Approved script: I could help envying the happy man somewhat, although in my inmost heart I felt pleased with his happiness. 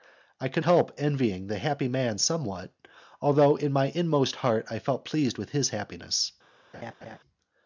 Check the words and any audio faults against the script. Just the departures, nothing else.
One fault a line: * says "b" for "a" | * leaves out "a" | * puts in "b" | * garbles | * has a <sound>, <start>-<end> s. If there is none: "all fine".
* has a laugh, 6.7-7.2 s